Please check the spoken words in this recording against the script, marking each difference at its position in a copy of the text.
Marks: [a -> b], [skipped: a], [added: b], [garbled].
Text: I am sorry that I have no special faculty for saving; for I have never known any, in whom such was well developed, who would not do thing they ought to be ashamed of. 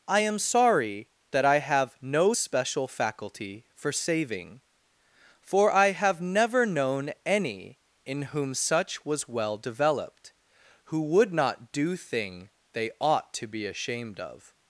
I am sorry that I have no special faculty for saving; for I have never known any, in whom such was well developed, who would not do thing they ought to be ashamed of.